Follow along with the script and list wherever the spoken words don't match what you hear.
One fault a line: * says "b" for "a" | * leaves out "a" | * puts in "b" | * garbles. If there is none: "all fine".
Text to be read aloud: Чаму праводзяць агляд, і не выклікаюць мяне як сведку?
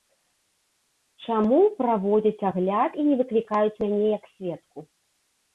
all fine